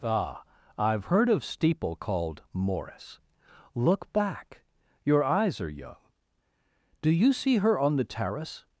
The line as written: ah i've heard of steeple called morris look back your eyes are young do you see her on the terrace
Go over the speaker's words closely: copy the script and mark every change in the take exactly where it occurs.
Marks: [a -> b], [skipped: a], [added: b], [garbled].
ah i've heard of steeple called morris look back your eyes are young do you see her on the terrace